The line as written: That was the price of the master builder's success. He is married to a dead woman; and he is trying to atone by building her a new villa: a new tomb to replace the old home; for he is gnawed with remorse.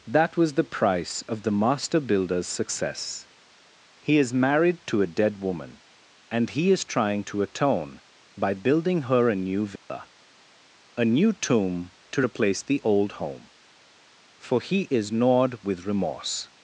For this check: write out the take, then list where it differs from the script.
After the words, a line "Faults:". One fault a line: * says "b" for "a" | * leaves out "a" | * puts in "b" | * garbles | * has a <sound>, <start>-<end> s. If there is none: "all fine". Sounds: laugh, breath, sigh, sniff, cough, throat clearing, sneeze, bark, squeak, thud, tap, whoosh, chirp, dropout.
That was the price of the master builder's success. He is married to a dead woman; and he is trying to atone by building her a new villa: a new tomb to replace the old home; for he is gnawed with remorse.
Faults:
* has a dropout, 9.8-9.9 s